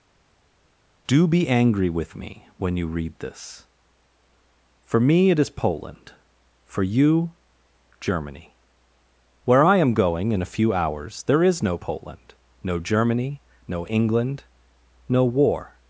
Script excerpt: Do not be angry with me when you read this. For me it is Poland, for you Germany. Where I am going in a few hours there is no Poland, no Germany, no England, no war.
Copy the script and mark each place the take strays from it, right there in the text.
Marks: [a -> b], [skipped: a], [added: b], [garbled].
Do [skipped: not] be angry with me when you read this. For me it is Poland, for you Germany. Where I am going in a few hours there is no Poland, no Germany, no England, no war.